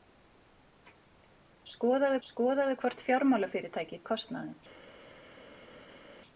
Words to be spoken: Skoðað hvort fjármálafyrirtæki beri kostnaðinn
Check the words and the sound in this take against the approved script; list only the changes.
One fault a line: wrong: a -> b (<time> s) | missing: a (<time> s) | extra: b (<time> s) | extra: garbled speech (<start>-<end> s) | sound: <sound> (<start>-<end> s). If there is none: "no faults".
extra: skoðað (2.3 s)
missing: beri (4.0 s)